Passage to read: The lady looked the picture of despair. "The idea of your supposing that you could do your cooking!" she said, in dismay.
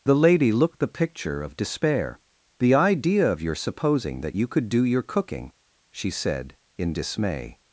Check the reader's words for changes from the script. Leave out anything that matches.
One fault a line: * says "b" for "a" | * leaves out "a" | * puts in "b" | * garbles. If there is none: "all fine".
all fine